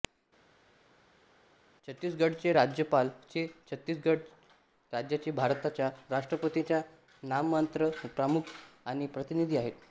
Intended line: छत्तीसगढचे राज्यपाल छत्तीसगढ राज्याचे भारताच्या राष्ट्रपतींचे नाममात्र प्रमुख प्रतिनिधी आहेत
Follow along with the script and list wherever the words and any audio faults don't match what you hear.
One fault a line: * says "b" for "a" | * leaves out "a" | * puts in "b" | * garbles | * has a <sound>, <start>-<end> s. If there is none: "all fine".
* puts in "हे"
* puts in "आणि"